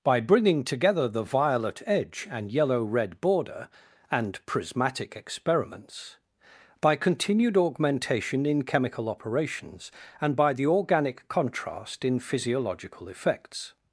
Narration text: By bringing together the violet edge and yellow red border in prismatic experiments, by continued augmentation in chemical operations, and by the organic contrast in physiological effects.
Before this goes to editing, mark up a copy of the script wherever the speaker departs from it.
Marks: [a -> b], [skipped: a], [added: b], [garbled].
By bringing together the violet edge and yellow red border [in -> and] prismatic experiments, by continued augmentation in chemical operations, and by the organic contrast in physiological effects.